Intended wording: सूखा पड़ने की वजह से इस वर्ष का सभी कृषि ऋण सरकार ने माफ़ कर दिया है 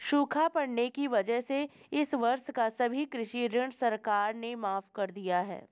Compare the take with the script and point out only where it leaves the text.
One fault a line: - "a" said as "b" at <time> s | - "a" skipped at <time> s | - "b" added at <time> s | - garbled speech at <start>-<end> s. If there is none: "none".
none